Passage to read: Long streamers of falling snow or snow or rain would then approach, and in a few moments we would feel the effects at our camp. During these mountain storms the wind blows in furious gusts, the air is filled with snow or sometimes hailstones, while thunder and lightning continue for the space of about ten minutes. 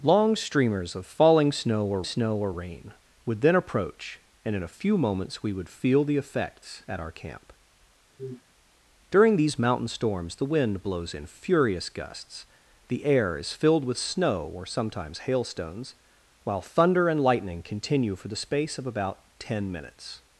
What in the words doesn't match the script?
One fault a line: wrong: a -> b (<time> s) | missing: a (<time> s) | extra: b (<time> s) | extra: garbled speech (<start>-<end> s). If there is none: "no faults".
no faults